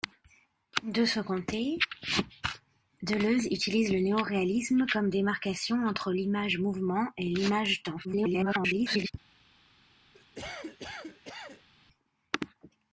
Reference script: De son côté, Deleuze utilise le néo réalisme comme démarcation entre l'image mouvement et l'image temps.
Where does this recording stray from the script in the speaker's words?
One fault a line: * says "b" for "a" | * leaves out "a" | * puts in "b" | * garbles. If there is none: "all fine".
* garbles